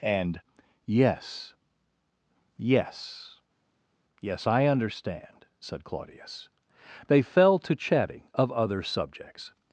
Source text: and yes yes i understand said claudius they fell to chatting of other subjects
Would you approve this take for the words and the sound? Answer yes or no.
no